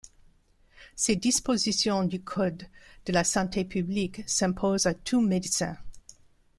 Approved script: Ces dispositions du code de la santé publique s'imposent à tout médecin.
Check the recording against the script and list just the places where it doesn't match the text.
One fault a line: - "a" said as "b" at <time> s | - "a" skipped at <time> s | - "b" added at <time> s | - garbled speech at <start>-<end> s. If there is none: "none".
none